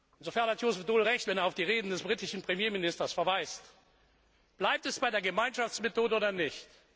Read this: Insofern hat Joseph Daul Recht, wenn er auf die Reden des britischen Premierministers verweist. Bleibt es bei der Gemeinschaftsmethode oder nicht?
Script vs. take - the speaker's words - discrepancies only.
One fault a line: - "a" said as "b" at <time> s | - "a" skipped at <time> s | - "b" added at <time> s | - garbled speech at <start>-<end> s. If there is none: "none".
none